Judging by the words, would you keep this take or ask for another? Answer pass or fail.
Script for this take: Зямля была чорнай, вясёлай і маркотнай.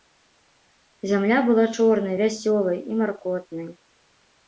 pass